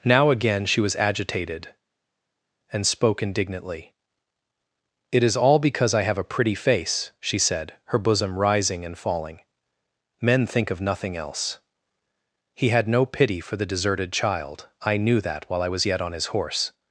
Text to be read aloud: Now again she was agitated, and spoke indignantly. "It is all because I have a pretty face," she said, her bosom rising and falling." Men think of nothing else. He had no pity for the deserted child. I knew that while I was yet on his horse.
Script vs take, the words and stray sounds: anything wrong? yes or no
no